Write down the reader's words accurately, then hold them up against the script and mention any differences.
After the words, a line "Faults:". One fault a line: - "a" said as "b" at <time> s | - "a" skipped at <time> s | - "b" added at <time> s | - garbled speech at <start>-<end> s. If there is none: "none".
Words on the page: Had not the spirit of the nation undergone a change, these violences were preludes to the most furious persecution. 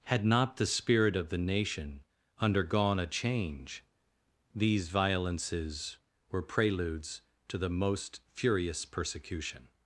Had not the spirit of the nation undergone a change, these violences were preludes to the most furious persecution.
Faults:
none